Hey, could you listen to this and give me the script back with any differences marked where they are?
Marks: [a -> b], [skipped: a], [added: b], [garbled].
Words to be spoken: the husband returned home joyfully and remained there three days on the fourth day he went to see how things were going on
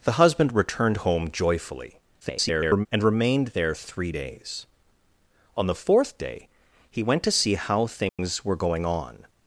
the husband returned home joyfully [garbled] and remained there three days on the fourth day he went to see how things were going on